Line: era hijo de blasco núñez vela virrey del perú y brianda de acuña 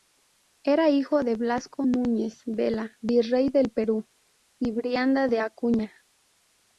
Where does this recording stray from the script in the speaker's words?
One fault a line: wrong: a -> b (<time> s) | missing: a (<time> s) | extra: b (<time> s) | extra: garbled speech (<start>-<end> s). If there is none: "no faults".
no faults